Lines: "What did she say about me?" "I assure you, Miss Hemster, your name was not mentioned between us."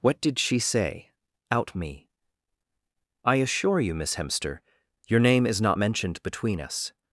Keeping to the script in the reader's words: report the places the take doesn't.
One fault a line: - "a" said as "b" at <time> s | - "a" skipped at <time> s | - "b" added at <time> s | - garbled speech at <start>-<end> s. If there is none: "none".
- "about" said as "out" at 1.5 s
- "was" said as "is" at 5.5 s